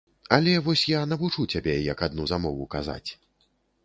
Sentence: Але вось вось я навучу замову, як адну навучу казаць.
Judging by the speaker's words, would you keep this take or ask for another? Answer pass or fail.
fail